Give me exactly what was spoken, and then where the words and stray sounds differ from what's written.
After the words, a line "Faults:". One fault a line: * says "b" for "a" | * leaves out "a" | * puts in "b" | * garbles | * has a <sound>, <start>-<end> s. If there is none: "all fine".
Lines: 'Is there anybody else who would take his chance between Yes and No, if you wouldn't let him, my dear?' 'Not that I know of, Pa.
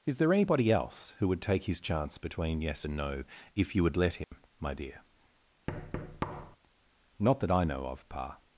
'Is there anybody else who would take his chance between Yes and No, if you would let him, my dear?' 'Not that I know of, Pa.
Faults:
* says "would" for "wouldn't"
* has a dropout, 4.2-4.3 s
* has a thud, 5.7-6.6 s